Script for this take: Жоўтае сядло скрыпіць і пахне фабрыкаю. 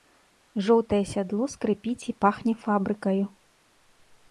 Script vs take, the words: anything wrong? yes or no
no